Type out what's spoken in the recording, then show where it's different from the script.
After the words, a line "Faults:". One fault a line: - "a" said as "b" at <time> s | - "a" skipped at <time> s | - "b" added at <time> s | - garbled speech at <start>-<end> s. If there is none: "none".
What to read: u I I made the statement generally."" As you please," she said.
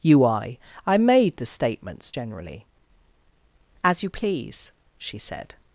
u I I made the statements generally."" As you please," she said.
Faults:
- "statement" said as "statements" at 1.4 s